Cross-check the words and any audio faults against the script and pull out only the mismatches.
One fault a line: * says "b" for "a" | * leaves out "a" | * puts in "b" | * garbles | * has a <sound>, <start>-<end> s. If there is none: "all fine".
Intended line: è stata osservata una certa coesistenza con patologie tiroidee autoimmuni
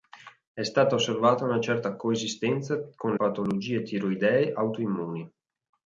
all fine